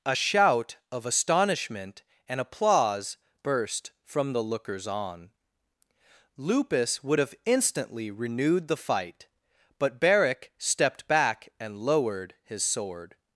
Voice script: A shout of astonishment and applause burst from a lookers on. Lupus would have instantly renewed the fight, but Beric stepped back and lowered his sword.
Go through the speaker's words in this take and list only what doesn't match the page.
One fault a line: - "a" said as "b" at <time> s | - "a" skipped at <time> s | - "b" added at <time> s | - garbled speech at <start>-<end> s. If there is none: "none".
- "a" said as "the" at 4.3 s